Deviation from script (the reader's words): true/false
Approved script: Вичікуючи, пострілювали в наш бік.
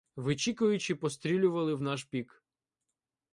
false